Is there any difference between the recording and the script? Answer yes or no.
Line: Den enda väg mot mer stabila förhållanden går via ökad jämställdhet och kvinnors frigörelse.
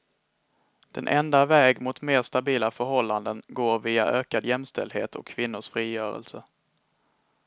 no